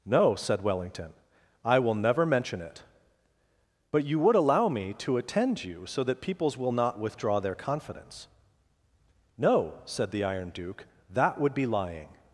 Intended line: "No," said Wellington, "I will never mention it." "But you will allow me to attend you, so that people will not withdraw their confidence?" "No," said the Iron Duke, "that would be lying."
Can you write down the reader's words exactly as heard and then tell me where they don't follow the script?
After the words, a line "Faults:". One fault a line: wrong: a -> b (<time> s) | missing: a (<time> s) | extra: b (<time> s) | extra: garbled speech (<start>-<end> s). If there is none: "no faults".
"No," said Wellington, "I will never mention it." "But you would allow me to attend you, so that peoples will not withdraw their confidence?" "No," said the Iron Duke, "that would be lying."
Faults:
wrong: will -> would (4.2 s)
wrong: people -> peoples (6.2 s)